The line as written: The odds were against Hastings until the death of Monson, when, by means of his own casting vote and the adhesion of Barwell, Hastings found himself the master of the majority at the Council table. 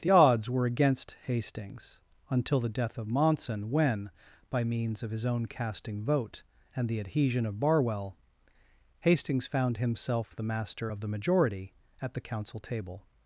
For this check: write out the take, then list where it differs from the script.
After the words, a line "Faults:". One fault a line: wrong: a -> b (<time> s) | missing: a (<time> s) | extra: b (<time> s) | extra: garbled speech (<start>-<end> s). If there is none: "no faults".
The odds were against Hastings until the death of Monson, when, by means of his own casting vote and the adhesion of Barwell, Hastings found himself the master of the majority at the Council table.
Faults:
no faults